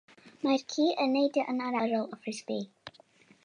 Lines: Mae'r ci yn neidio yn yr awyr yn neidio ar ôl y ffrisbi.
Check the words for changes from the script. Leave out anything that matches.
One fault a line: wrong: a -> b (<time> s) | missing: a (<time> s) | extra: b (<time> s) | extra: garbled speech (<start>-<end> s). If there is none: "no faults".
missing: awyr yn neidio (1.8 s)